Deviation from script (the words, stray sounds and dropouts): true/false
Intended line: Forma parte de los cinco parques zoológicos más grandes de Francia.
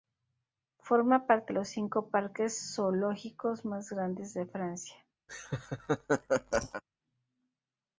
true